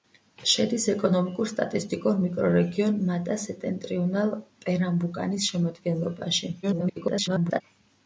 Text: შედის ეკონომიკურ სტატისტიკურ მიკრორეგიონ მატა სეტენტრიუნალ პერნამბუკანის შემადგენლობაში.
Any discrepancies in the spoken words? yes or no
yes